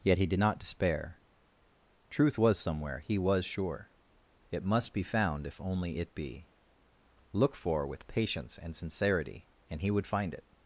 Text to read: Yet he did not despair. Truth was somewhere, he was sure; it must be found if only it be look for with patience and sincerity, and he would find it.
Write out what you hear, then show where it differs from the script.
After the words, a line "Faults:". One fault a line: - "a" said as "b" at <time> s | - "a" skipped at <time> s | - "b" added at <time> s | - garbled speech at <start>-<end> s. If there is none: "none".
Yet he did not despair. Truth was somewhere, he was sure; it must be found if only it be look for with patience and sincerity, and he would find it.
Faults:
none